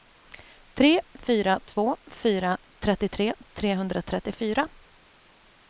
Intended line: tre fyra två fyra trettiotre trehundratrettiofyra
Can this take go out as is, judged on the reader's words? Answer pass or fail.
pass